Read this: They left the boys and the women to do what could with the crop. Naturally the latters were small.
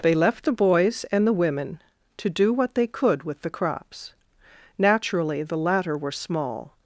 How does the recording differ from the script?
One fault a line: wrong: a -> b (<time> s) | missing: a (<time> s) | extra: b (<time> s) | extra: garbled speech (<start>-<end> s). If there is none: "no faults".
extra: they (2.8 s)
wrong: crop -> crops (3.5 s)
wrong: latters -> latter (5.6 s)